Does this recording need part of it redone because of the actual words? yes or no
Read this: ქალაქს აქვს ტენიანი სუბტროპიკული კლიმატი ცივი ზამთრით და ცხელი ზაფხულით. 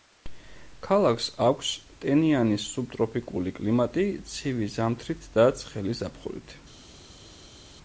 no